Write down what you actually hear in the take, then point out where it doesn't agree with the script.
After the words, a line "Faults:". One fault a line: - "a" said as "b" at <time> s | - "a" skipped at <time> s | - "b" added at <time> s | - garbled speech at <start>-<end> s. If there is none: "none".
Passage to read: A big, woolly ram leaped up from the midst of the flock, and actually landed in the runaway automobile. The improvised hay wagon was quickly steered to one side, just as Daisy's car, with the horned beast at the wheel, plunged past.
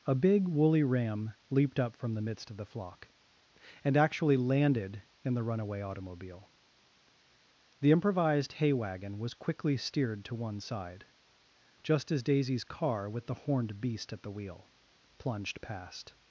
A big, woolly ram leaped up from the midst of the flock, and actually landed in the runaway automobile. The improvised hay wagon was quickly steered to one side, just as Daisy's car, with the horned beast at the wheel, plunged past.
Faults:
none